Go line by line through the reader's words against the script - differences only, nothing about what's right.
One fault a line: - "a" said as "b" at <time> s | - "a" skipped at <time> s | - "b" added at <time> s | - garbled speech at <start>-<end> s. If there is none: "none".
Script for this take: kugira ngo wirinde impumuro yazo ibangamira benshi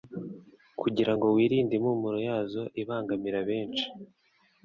none